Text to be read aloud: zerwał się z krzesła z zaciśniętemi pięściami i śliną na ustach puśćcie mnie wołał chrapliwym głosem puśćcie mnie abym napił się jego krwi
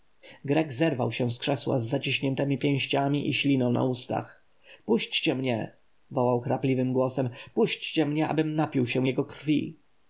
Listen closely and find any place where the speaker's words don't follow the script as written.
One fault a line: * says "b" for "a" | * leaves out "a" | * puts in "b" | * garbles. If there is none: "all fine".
all fine